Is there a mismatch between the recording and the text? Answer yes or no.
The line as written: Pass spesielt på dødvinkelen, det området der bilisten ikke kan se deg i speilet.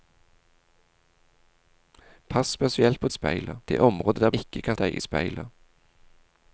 yes